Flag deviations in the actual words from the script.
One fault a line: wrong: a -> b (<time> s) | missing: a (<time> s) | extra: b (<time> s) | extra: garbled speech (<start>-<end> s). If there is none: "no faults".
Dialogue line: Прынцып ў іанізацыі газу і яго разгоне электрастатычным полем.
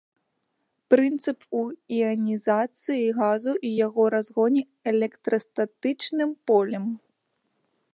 no faults